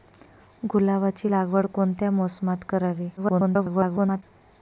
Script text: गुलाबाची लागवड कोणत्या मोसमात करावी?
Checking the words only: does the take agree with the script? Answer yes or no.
no